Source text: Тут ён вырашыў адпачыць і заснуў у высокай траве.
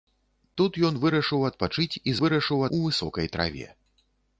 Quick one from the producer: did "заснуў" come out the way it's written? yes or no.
no